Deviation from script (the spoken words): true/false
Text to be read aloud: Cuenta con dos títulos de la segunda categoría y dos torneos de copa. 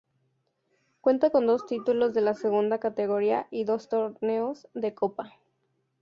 false